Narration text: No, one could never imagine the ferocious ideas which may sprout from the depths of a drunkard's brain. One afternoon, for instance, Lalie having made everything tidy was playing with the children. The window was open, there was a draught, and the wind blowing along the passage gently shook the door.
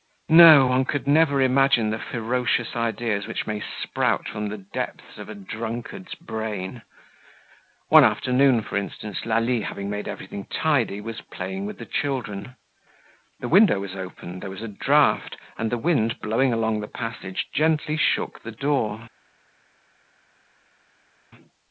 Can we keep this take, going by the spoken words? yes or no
yes